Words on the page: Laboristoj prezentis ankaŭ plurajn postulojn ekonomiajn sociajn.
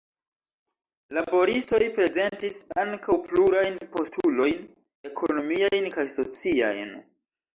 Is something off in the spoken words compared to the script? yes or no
yes